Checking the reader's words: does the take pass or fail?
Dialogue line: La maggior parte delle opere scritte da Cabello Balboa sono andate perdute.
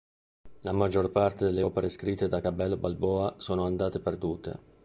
pass